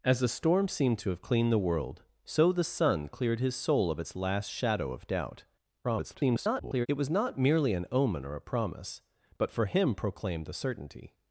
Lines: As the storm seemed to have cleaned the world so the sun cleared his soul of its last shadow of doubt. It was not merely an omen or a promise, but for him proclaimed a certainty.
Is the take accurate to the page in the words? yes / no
no